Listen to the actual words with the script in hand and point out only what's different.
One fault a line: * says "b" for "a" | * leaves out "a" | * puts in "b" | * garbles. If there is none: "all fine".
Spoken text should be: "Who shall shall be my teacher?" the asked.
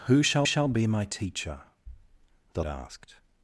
all fine